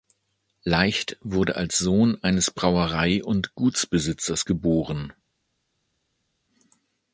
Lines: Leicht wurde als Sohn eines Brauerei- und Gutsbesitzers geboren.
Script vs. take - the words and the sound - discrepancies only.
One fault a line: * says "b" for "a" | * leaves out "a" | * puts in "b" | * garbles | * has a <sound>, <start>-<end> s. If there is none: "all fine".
all fine